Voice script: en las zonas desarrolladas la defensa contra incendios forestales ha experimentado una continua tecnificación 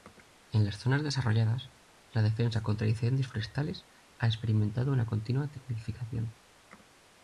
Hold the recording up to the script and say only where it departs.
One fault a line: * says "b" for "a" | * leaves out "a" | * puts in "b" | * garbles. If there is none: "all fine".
all fine